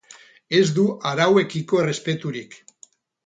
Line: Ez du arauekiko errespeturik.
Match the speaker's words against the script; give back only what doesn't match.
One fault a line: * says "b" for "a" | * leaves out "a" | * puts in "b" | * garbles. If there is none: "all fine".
all fine